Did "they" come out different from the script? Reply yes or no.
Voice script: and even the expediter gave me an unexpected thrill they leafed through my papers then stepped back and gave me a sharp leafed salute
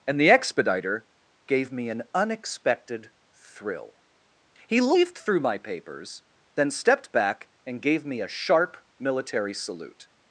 yes